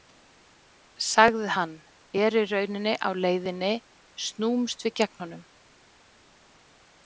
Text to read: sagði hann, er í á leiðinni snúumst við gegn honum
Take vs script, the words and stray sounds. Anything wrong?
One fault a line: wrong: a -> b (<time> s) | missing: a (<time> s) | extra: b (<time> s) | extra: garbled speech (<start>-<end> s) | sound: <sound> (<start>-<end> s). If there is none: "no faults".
extra: rauninni (2.5 s)